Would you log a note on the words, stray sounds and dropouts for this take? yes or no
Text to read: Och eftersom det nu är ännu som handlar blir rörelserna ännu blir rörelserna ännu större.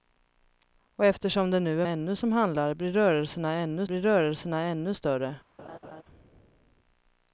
yes